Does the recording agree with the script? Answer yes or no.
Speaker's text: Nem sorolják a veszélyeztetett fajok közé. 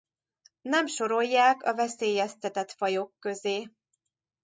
yes